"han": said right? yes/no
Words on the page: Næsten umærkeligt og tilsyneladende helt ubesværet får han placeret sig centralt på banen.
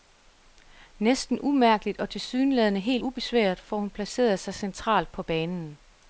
no